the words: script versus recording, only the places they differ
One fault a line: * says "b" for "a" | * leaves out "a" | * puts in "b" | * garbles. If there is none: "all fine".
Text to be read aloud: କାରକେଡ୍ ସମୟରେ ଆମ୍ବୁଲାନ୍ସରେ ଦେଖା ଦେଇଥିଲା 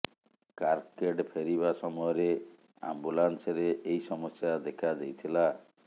* puts in "ଫେରିବା"
* puts in "ଏହି ସମସ୍ୟା"